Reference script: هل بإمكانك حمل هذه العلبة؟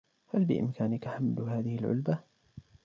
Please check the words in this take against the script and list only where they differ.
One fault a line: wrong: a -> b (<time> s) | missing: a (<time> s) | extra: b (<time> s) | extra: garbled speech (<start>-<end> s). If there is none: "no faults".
no faults